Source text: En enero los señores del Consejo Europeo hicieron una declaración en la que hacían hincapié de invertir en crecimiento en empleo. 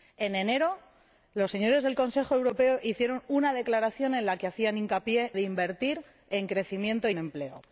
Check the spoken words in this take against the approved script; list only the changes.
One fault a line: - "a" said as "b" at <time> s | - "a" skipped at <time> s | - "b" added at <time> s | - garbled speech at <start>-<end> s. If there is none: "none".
none